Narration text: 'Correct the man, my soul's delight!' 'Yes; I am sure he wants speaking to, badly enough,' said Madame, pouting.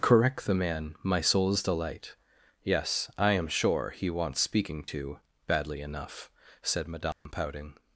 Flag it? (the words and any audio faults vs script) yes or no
yes